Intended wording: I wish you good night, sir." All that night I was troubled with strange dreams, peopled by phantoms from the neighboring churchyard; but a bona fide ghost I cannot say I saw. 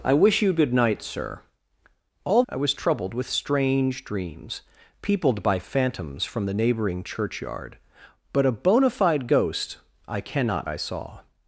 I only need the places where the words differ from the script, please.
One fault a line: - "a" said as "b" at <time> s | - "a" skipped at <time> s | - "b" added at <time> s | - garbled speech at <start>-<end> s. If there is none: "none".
- "that night" skipped at 2.4 s
- "say" skipped at 10.7 s